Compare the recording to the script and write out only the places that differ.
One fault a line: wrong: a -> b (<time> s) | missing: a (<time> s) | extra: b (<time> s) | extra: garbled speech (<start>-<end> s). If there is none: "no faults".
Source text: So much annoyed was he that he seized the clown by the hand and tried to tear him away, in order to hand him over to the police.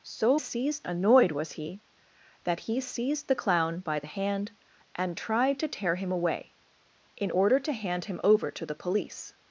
wrong: much -> seized (0.4 s)